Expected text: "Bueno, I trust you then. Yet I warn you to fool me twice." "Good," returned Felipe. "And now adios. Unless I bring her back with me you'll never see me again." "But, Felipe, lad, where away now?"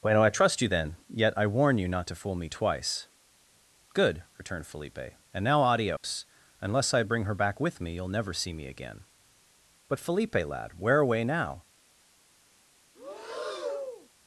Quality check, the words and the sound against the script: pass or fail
fail